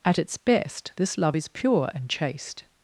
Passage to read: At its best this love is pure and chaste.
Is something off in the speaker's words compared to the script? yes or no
no